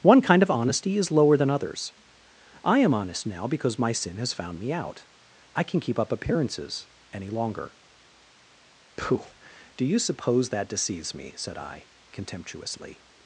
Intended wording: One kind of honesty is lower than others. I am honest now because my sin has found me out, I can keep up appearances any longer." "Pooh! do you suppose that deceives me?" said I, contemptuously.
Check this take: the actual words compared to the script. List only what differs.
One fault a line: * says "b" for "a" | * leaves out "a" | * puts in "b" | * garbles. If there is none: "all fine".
all fine